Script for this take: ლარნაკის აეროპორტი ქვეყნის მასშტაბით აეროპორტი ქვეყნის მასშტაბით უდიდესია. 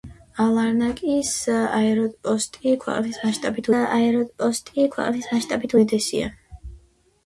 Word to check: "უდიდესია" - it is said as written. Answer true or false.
true